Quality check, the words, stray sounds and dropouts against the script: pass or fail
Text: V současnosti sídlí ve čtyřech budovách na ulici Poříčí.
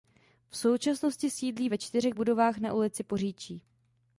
pass